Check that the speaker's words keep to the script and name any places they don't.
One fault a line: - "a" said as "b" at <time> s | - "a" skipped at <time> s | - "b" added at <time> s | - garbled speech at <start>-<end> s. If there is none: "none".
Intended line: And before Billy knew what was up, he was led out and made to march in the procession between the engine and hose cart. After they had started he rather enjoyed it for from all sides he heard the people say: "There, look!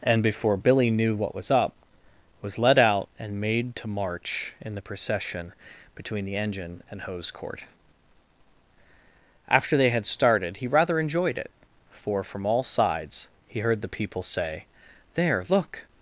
- "he" skipped at 1.7 s
- "cart" said as "court" at 7.3 s